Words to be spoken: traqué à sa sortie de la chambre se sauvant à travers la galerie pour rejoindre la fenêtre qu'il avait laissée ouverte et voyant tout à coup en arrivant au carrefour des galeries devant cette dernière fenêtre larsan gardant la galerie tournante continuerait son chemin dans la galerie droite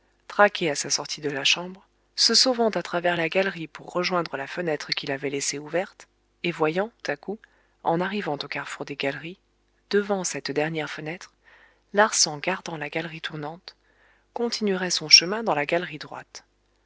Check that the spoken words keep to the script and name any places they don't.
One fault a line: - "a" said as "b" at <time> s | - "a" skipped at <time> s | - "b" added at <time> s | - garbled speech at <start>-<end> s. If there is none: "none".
- "tout" skipped at 6.9 s